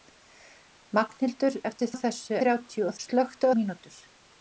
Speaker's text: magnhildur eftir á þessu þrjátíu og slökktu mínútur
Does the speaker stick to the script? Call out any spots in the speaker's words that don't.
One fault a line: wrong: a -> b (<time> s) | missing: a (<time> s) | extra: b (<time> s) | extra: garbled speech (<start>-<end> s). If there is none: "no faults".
no faults